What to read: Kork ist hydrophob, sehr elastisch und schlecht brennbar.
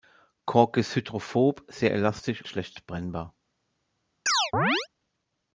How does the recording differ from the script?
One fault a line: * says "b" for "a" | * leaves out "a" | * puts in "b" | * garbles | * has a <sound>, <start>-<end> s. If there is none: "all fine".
* leaves out "und"
* has a chirp, 4.3-4.9 s